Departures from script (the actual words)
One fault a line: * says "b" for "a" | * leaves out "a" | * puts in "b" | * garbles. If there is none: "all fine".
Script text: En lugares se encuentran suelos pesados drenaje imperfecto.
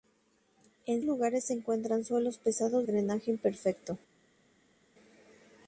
all fine